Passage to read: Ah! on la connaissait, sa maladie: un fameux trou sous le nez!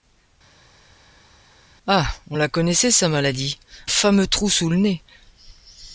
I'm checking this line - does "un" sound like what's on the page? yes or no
no